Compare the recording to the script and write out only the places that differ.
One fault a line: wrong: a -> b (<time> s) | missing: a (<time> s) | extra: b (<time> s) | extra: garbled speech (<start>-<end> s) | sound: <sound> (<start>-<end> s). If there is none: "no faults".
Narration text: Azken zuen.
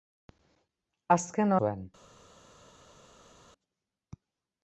no faults